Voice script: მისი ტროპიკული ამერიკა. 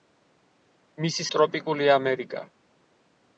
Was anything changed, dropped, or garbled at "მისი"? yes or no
no